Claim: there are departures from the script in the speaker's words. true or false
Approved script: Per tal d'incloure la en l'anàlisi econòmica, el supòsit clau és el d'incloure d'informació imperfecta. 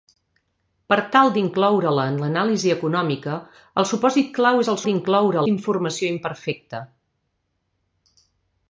false